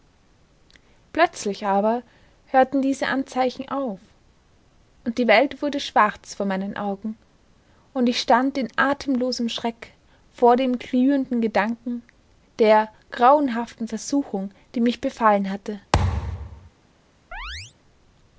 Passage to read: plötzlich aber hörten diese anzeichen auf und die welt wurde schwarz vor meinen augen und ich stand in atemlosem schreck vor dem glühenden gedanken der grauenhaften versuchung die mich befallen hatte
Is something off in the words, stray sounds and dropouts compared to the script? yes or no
yes